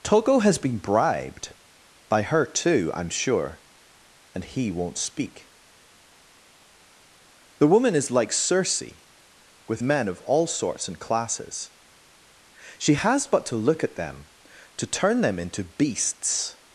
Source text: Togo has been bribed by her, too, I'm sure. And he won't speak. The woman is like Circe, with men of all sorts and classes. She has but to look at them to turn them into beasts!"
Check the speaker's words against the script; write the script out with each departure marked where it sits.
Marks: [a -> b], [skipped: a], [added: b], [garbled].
Togo has been bribed by her, too, I'm sure. And he won't speak. The woman is like Circe, with men of all sorts and classes. She has but to look at them to turn them into beasts!"